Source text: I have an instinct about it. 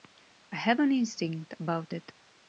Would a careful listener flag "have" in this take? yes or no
no